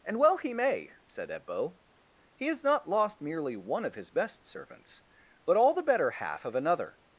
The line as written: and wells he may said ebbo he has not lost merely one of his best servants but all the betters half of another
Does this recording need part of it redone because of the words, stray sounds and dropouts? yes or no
yes